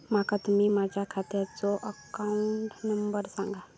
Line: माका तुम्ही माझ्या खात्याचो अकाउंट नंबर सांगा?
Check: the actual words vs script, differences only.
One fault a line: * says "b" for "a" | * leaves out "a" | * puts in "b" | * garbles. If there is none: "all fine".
all fine